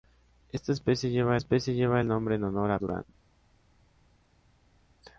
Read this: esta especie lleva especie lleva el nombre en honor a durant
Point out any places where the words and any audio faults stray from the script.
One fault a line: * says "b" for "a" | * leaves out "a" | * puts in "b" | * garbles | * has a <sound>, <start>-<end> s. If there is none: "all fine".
all fine